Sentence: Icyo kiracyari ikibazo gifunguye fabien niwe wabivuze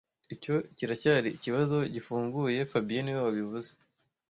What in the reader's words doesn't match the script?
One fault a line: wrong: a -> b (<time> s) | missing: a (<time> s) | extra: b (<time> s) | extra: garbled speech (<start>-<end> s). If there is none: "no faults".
no faults